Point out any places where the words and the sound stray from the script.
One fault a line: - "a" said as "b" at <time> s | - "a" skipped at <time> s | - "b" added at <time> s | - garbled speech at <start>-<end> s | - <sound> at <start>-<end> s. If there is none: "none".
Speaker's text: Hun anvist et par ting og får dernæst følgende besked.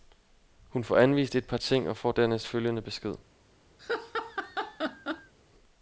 - "får" added at 0.8 s
- laugh at 3.8-5.3 s